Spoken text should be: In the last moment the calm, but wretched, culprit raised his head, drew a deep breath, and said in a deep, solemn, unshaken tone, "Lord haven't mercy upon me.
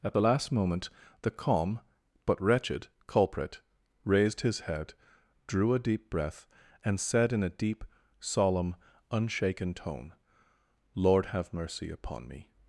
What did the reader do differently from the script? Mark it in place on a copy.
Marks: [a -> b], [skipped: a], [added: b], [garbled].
[In -> At] the last moment the calm, but wretched, culprit raised his head, drew a deep breath, and said in a deep, solemn, unshaken tone, "Lord [haven't -> have] mercy upon me.